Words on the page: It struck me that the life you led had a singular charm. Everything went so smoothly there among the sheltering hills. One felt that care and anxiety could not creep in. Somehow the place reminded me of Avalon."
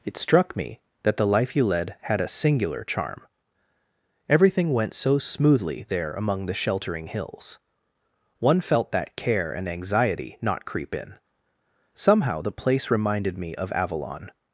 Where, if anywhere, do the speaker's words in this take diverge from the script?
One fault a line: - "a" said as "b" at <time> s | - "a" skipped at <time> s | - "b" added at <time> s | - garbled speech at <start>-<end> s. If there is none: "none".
- "could" skipped at 10.4 s